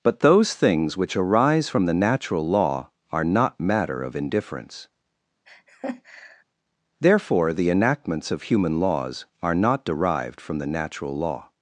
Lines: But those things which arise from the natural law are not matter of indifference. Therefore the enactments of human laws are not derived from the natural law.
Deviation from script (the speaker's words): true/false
false